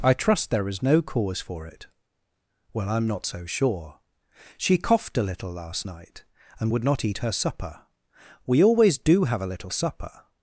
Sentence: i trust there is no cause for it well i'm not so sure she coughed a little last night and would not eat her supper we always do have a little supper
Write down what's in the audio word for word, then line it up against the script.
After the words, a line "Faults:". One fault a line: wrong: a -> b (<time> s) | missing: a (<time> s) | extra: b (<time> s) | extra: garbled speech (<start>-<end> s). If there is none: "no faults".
i trust there is no cause for it well i'm not so sure she coughed a little last night and would not eat her supper we always do have a little supper
Faults:
no faults